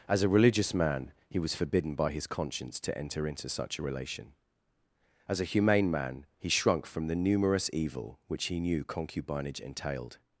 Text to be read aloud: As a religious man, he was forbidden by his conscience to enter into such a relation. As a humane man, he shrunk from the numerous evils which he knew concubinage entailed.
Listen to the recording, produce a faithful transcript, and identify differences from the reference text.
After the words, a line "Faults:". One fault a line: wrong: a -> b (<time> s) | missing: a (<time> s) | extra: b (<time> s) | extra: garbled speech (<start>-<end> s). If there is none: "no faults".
As a religious man, he was forbidden by his conscience to enter into such a relation. As a humane man, he shrunk from the numerous evil which he knew concubinage entailed.
Faults:
wrong: evils -> evil (7.7 s)